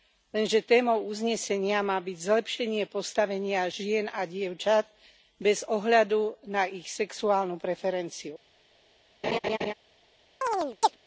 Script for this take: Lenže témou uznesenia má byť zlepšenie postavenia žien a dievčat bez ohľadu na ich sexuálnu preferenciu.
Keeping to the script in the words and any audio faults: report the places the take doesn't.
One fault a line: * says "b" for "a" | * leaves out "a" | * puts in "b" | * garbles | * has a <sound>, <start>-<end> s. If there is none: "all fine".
* has a laugh, 9.2-9.7 s
* has a chirp, 10.4-11.0 s